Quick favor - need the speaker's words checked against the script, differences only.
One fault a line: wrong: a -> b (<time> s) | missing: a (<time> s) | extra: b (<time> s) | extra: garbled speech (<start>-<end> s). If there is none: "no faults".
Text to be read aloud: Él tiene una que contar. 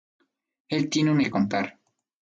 no faults